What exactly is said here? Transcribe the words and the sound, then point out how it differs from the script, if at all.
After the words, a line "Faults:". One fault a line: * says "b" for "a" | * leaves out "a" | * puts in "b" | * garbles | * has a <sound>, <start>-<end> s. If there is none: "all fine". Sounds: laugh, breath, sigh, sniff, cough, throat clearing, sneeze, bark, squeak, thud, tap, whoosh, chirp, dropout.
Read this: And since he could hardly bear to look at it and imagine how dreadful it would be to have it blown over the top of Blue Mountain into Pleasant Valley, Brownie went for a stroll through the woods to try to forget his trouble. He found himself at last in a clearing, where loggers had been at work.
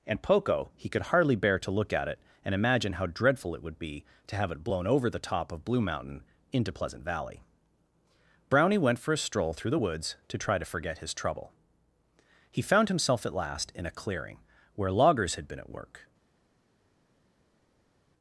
And poco he could hardly bear to look at it and imagine how dreadful it would be to have it blown over the top of Blue Mountain into Pleasant Valley, Brownie went for a stroll through the woods to try to forget his trouble. He found himself at last in a clearing, where loggers had been at work.
Faults:
* says "poco" for "since"